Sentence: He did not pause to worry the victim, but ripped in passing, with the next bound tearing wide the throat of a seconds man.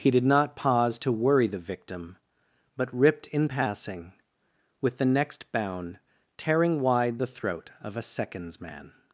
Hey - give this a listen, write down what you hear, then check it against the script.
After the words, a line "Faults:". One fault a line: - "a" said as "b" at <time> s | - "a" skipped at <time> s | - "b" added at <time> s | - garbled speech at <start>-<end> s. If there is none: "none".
He did not pause to worry the victim, but ripped in passing, with the next bound tearing wide the throat of a seconds man.
Faults:
none